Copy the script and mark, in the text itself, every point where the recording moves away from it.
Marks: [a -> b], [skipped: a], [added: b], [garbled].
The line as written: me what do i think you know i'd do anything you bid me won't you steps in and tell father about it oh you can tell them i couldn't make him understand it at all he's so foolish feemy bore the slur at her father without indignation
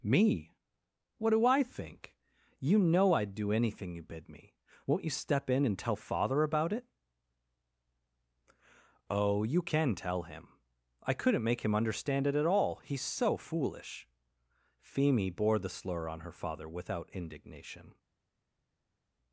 me what do i think you know i'd do anything you bid me won't you [steps -> step] in and tell father about it oh you can tell [them -> him] i couldn't make him understand it at all he's so foolish feemy bore the slur [at -> on] her father without indignation